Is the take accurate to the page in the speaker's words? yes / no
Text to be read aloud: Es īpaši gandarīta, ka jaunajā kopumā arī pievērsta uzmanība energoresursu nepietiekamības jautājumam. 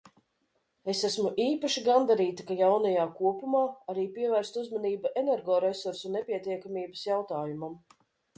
no